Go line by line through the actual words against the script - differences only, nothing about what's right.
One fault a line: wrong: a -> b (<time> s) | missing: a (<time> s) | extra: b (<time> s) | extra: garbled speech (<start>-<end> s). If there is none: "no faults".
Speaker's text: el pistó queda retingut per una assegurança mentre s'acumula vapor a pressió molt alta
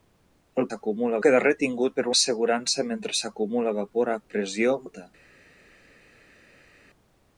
wrong: pistó -> s'acumula (0.7 s)
missing: una (2.0 s)
missing: molt (4.8 s)